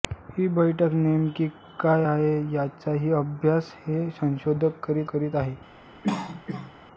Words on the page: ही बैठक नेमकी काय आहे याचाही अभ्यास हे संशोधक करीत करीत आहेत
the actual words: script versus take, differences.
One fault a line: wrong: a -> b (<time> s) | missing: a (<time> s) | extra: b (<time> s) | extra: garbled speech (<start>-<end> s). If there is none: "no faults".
no faults